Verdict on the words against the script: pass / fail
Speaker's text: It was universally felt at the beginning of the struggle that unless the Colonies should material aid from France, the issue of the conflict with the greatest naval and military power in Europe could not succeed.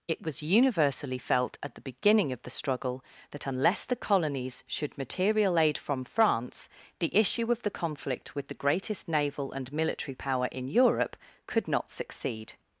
pass